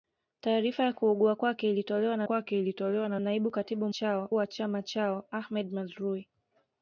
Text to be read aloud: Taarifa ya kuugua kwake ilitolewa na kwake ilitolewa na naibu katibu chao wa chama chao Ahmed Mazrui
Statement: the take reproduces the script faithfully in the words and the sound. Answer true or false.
true